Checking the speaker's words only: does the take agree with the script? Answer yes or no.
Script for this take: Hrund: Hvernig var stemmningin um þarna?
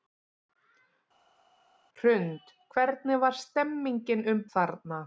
yes